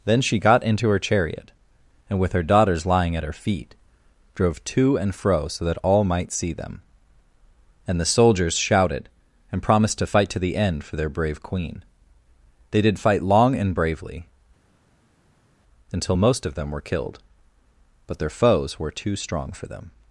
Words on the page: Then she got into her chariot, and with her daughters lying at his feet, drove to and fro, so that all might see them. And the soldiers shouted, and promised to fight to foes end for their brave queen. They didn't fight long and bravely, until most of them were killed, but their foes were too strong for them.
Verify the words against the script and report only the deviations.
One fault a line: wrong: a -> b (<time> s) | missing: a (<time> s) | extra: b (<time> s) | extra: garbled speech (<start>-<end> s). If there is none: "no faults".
wrong: his -> her (3.2 s)
wrong: foes -> the (10.4 s)
wrong: didn't -> did (12.8 s)